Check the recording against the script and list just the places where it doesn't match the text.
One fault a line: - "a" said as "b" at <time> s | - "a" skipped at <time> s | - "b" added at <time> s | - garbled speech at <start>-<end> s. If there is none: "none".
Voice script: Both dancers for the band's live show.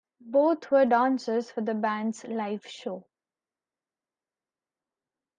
- "were" added at 0.7 s